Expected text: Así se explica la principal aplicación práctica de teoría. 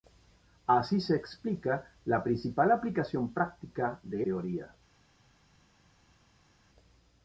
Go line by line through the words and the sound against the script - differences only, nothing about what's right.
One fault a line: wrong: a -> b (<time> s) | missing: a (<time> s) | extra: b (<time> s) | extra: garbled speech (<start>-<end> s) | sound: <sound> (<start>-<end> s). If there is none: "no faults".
no faults